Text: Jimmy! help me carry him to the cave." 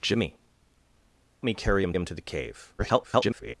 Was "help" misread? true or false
true